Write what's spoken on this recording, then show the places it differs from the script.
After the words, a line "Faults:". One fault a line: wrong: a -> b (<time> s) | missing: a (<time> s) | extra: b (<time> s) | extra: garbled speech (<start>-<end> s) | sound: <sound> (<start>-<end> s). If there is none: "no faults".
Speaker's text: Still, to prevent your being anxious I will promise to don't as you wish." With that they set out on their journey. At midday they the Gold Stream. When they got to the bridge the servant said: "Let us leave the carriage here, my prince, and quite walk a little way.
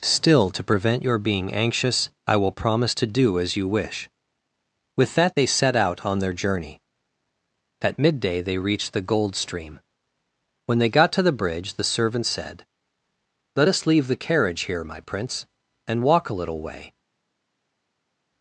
Still, to prevent your being anxious I will promise to do as you wish." With that they set out on their journey. At midday they reached the Gold Stream. When they got to the bridge the servant said: "Let us leave the carriage here, my prince, and walk a little way.
Faults:
wrong: don't -> do (3.1 s)
extra: reached (8.6 s)
missing: quite (16.0 s)